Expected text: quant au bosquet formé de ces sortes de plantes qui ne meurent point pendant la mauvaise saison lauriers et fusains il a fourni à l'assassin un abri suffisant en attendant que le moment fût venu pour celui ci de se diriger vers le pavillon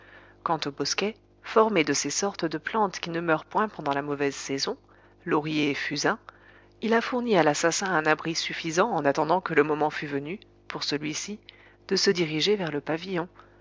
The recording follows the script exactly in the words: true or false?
true